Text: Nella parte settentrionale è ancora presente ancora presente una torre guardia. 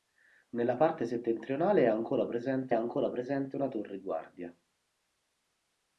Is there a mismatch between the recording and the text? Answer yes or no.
no